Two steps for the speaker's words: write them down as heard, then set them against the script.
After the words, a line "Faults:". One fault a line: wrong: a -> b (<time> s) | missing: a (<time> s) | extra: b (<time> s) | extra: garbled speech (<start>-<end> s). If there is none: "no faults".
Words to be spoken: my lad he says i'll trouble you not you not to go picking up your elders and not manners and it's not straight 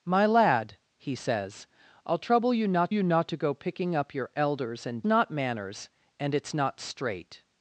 my lad he says i'll trouble you not you not to go picking up your elders and not manners and it's not straight
Faults:
no faults